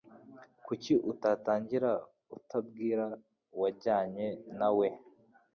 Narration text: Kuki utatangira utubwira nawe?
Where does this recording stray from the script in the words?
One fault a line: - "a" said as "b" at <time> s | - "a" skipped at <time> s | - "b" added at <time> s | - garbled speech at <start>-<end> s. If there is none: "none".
- "uwajyanye" added at 3.6 s